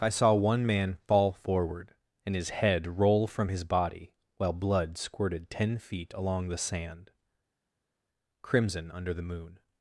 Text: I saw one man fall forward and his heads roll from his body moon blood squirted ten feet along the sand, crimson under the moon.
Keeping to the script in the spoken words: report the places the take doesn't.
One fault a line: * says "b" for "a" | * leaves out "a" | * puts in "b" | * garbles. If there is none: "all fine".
* says "head" for "heads"
* says "while" for "moon"